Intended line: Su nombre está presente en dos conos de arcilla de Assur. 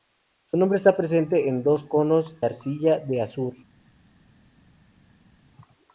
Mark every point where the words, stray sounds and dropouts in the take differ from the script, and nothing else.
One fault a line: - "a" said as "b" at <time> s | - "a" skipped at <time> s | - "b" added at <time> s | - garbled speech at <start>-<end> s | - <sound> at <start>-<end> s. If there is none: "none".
- "de" skipped at 2.4 s